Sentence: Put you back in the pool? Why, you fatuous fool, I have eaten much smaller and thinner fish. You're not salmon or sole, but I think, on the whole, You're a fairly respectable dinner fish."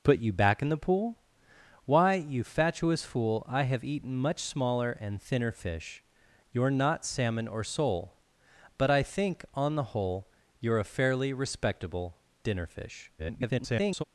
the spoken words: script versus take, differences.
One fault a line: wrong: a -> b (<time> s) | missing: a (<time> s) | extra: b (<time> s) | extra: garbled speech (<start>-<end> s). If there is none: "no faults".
extra: garbled speech (13.2-14.0 s)